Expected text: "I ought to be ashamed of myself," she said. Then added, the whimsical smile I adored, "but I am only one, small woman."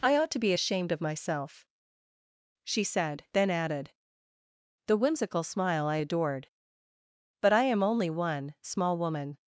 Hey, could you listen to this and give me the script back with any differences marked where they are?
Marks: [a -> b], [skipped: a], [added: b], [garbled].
"I ought to be ashamed of myself," she said. Then added, the whimsical smile I adored, "but I am only one, small woman."